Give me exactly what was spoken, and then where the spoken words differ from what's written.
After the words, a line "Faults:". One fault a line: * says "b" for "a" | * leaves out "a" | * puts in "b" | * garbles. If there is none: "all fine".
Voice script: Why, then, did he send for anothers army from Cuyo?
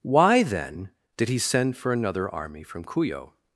Why, then, did he send for another army from Cuyo?
Faults:
* says "another" for "anothers"